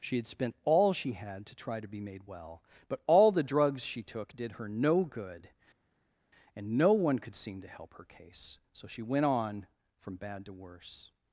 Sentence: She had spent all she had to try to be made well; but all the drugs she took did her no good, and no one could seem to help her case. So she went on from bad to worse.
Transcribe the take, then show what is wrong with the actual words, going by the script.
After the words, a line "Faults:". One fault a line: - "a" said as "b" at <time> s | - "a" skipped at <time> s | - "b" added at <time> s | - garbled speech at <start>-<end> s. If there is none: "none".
She had spent all she had to try to be made well; but all the drugs she took did her no good, and no one could seem to help her case. So she went on from bad to worse.
Faults:
none